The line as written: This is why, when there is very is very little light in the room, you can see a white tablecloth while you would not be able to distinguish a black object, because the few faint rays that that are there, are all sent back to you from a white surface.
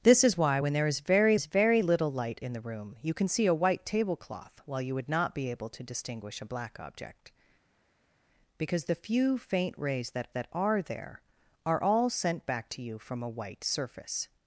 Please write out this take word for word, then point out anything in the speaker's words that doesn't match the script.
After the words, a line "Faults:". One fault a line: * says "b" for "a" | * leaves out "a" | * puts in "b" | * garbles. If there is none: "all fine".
This is why, when there is very is very little light in the room, you can see a white tablecloth while you would not be able to distinguish a black object, because the few faint rays that that are there, are all sent back to you from a white surface.
Faults:
all fine